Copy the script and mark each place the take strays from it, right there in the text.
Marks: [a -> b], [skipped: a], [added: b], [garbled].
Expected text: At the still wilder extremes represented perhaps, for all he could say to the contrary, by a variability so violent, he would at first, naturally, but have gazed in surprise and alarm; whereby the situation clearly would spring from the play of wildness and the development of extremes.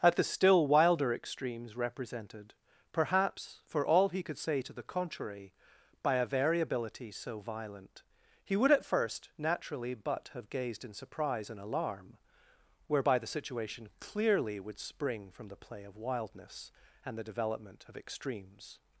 At the still wilder extremes represented perhaps, for all he could say to the contrary, by a variability so violent, he would at first, naturally, but have gazed in surprise and alarm; whereby the situation clearly would spring from the play of wildness and the development of extremes.